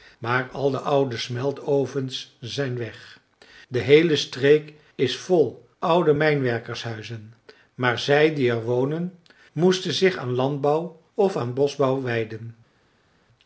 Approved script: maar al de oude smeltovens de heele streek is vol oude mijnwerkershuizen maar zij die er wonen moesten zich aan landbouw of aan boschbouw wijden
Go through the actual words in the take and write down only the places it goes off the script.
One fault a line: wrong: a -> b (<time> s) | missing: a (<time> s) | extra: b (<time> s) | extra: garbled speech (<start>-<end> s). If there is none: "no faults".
extra: zijn weg (2.4 s)